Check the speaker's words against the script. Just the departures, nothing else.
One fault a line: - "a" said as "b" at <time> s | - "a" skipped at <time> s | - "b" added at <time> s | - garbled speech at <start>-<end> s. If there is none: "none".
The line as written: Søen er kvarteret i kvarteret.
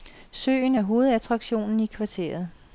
- "kvarteret" said as "hovedattraktionen" at 0.8 s